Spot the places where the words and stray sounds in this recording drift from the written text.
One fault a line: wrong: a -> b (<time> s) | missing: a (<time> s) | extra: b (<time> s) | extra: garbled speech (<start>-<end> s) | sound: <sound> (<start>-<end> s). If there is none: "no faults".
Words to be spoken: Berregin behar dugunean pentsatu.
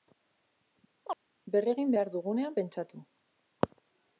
sound: chirp (1.0-1.2 s)